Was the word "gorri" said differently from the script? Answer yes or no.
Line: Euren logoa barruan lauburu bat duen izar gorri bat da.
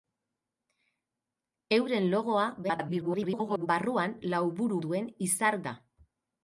yes